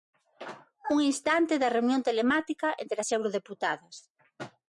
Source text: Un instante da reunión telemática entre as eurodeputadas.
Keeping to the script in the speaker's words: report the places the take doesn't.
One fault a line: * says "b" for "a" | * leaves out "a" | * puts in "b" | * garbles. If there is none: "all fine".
all fine